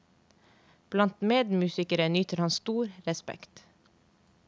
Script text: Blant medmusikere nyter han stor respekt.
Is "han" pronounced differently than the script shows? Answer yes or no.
no